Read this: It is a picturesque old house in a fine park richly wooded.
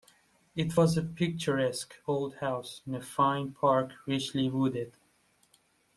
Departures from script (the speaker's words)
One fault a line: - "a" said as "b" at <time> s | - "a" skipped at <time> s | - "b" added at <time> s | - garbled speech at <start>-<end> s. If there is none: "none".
- "is" said as "was" at 0.8 s